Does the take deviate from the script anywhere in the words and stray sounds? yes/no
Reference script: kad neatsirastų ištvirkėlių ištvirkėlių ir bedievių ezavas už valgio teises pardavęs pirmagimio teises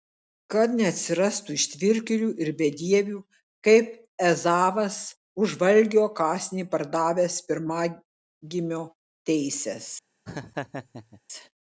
yes